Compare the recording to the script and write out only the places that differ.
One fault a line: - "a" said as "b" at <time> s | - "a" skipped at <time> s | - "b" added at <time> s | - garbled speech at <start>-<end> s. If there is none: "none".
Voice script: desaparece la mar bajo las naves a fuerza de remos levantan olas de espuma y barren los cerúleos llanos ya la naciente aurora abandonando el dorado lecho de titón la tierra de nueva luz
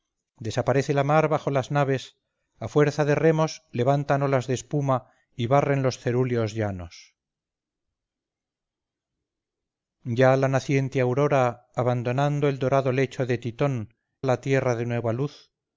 none